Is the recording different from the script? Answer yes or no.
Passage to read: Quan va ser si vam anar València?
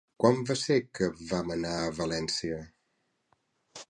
yes